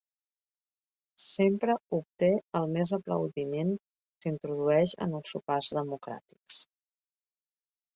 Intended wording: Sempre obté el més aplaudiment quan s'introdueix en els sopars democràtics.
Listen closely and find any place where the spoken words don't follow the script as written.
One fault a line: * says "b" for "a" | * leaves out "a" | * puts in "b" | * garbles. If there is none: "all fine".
* leaves out "quan"